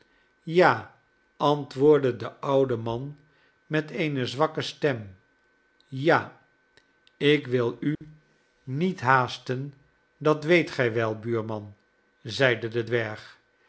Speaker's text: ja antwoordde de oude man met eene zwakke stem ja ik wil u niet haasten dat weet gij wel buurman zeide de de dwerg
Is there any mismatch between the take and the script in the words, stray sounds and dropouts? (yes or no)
yes